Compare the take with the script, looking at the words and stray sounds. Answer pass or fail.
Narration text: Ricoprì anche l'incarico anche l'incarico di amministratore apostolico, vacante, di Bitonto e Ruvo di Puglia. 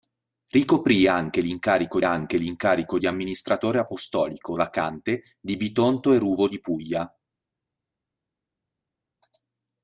pass